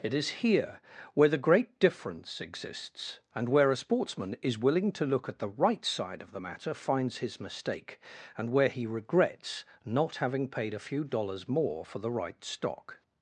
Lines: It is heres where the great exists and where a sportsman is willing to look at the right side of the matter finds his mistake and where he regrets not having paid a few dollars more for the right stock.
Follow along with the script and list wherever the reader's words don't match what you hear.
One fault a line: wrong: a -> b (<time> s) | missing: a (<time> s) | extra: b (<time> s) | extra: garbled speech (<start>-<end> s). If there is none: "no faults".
wrong: heres -> here (0.4 s)
extra: difference (1.8 s)